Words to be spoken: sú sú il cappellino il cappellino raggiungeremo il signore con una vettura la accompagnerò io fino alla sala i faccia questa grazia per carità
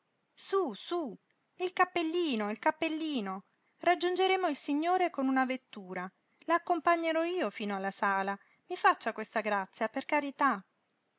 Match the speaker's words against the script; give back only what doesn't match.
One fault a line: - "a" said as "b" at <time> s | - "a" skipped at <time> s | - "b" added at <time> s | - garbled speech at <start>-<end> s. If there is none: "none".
none